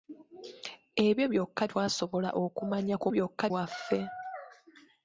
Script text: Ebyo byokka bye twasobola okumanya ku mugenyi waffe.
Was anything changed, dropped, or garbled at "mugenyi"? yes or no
yes